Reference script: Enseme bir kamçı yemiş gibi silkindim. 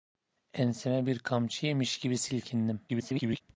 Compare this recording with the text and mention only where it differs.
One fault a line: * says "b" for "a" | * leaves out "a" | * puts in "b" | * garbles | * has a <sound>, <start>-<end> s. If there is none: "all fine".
* garbles